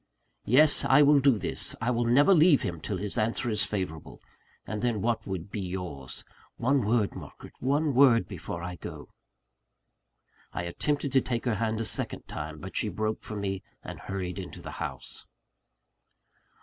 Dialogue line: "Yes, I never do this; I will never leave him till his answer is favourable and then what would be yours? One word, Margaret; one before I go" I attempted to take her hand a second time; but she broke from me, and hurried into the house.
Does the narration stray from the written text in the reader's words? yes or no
yes